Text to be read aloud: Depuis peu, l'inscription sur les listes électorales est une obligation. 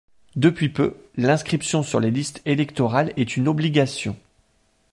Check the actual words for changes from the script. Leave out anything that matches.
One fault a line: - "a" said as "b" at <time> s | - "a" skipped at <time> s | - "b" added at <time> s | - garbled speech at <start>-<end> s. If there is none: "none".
none